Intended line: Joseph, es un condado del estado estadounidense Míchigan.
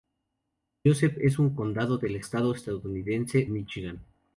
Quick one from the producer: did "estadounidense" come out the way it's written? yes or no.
yes